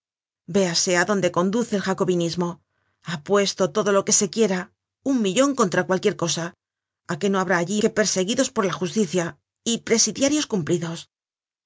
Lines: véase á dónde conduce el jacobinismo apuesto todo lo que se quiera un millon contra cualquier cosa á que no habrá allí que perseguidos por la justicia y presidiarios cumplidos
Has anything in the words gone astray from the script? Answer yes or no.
no